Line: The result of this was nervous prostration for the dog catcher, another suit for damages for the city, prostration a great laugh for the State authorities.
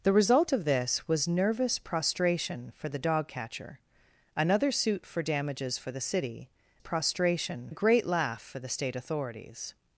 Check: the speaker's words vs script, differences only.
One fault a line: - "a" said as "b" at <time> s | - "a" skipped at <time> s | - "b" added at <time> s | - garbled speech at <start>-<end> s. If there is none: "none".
none